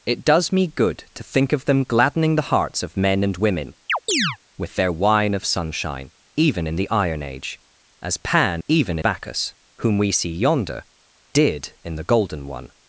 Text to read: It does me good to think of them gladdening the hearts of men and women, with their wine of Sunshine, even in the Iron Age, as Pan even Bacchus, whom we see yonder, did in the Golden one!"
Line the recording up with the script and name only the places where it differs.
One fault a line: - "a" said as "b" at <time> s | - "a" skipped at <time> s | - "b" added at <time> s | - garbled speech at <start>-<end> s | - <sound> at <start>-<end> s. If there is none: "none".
- chirp at 3.9-4.4 s